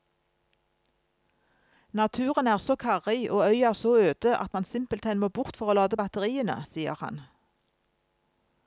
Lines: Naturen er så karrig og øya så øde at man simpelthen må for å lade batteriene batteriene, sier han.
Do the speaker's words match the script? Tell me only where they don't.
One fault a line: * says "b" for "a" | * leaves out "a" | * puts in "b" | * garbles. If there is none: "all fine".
* puts in "bort"
* leaves out "batteriene"